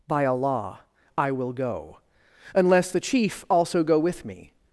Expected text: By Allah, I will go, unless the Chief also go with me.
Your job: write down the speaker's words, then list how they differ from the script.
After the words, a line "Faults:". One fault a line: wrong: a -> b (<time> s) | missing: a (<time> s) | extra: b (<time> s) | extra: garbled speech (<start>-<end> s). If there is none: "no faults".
By Allah, I will go, unless the Chief also go with me.
Faults:
no faults